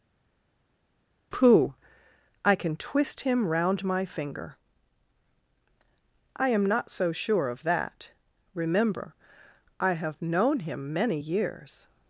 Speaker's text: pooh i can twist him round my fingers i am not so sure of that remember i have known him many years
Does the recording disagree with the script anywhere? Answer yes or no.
yes